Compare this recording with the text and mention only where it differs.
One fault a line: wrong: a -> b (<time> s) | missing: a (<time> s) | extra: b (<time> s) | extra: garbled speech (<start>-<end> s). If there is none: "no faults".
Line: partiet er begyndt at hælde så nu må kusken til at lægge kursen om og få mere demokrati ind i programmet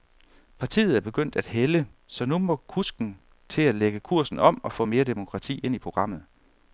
no faults